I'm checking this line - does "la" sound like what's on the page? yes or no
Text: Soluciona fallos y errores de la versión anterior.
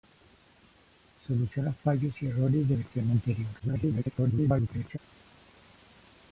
no